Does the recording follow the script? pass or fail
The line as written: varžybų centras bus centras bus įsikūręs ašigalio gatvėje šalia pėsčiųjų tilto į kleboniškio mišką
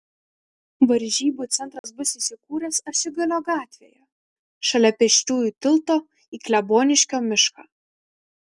fail